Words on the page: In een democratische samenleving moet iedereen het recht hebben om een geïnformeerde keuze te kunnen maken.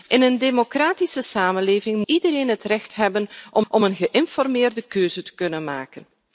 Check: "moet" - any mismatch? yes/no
yes